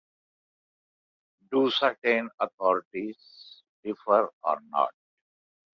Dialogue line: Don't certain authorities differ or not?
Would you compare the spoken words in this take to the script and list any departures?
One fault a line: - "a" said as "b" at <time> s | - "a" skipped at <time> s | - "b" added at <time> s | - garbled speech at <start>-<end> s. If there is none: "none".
- "Don't" said as "Do" at 1.5 s